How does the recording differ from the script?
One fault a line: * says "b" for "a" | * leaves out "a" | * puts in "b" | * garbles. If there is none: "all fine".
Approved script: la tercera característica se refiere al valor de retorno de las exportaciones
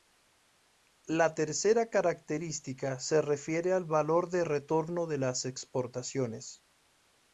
all fine